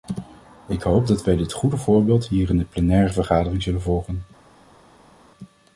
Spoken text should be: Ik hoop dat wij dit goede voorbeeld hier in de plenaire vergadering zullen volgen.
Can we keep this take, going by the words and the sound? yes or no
yes